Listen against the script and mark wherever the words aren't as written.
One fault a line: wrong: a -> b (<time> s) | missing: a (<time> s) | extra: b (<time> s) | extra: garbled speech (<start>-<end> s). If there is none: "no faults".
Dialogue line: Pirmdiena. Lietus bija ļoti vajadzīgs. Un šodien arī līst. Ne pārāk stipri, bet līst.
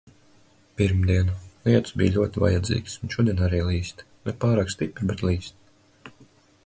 no faults